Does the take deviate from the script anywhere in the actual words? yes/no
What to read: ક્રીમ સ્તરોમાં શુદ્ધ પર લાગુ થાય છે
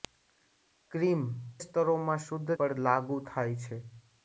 no